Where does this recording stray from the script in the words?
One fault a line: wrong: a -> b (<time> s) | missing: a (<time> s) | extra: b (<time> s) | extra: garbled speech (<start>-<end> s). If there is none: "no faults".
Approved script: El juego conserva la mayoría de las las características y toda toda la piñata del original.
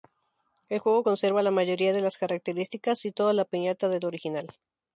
missing: las (2.2 s)
missing: toda (3.3 s)